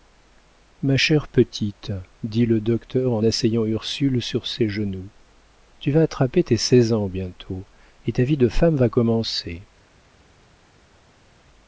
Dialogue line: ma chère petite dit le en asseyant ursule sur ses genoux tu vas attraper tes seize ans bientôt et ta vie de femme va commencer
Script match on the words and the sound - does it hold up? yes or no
no